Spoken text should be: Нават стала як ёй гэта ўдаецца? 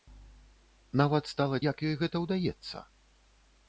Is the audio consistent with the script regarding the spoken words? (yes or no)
yes